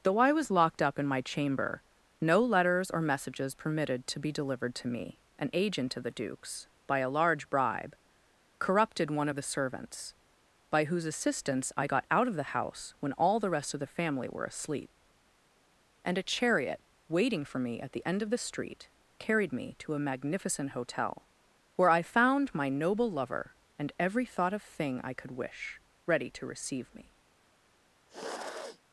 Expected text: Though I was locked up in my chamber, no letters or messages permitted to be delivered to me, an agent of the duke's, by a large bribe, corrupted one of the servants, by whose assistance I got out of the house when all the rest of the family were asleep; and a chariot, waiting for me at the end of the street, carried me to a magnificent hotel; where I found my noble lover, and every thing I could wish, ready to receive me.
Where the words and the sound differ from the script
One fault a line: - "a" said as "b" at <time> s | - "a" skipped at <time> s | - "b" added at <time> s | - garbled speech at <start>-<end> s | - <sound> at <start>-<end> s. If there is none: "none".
- "thought of" added at 24.2 s
- sniff at 28.1-28.8 s